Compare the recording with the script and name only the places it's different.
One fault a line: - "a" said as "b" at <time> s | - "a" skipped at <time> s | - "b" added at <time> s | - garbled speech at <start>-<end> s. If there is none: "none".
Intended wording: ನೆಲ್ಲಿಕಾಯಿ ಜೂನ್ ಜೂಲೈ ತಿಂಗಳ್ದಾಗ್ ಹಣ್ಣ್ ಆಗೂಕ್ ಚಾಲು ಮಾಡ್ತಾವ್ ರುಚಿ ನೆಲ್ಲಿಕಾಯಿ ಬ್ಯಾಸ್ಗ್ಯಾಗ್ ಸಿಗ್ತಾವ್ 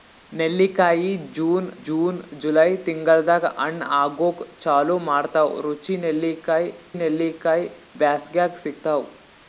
- "ಜೂನ್" added at 1.8 s
- "ನೆಲ್ಲಿಕಾಯಿ" added at 6.9 s